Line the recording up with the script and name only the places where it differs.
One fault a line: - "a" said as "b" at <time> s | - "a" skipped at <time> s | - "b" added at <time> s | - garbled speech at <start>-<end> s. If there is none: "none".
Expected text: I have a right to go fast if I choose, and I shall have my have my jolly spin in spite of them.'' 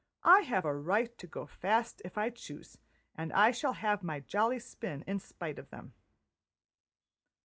- "have my" skipped at 4.2 s